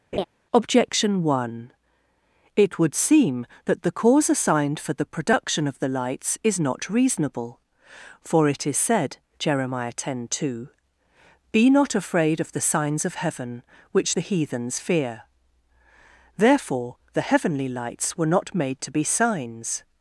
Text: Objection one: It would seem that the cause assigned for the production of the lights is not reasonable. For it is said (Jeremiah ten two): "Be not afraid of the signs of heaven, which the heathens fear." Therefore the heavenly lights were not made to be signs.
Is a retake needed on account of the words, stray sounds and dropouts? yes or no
yes